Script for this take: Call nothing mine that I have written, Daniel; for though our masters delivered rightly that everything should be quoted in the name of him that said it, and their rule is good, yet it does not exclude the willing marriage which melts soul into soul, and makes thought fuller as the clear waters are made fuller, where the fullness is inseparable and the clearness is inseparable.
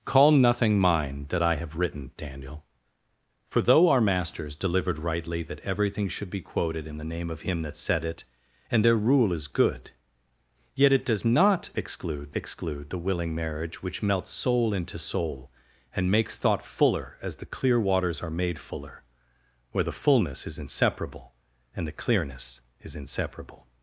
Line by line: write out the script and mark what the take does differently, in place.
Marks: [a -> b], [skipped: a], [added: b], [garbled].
Call nothing mine that I have written, Daniel; for though our masters delivered rightly that everything should be quoted in the name of him that said it, and their rule is good, yet it does not exclude [added: exclude] the willing marriage which melts soul into soul, and makes thought fuller as the clear waters are made fuller, where the fullness is inseparable and the clearness is inseparable.